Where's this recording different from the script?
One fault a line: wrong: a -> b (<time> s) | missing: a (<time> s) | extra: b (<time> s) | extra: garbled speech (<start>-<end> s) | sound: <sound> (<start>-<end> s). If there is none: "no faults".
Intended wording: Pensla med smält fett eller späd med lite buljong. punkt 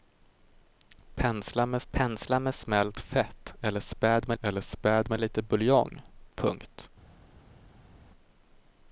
extra: pensla med (1.9 s)
extra: eller späd med (4.4 s)